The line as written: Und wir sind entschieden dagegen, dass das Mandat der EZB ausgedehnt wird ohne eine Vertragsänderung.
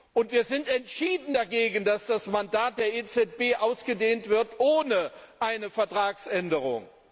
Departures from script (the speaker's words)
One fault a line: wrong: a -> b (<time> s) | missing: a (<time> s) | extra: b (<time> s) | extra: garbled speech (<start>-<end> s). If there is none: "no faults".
no faults